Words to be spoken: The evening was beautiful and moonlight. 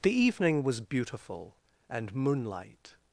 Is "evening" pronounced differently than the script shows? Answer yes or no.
no